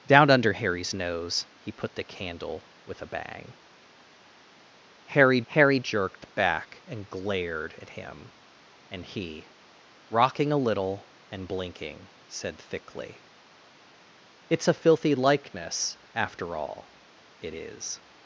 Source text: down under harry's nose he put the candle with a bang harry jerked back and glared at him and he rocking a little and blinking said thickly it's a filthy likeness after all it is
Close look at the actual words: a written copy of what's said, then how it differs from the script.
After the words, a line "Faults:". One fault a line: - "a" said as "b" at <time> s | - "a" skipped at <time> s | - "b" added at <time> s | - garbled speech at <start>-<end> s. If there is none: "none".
down under harry's nose he put the candle with a bang harry harry jerked back and glared at him and he rocking a little and blinking said thickly it's a filthy likeness after all it is
Faults:
- "harry" added at 5.5 s